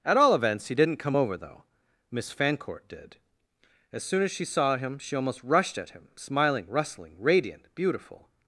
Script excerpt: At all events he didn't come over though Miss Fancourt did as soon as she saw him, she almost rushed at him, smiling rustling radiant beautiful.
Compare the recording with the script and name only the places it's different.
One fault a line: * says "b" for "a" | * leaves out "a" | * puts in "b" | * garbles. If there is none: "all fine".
all fine